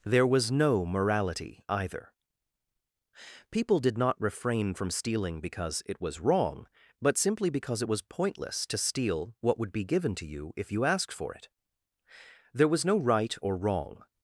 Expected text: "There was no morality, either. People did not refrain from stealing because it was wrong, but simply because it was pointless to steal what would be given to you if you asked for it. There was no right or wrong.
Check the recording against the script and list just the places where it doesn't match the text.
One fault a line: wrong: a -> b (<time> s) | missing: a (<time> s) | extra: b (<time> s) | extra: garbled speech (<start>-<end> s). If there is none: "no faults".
no faults